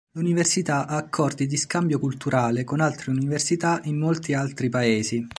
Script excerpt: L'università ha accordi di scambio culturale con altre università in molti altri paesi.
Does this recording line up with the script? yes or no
yes